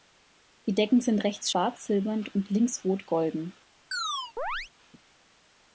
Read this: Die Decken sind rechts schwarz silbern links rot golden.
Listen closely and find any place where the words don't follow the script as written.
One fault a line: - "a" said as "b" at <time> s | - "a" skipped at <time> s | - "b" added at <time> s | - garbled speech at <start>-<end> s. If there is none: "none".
- "und" added at 2.3 s